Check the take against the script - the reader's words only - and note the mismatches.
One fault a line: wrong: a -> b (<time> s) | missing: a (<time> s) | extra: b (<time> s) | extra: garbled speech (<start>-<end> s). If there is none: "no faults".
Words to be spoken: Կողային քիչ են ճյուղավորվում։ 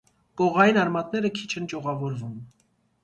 extra: արմատները (0.8 s)